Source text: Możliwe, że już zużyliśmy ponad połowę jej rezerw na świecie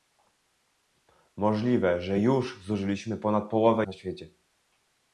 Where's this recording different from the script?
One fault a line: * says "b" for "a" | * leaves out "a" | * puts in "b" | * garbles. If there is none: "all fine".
* leaves out "jej rezerw"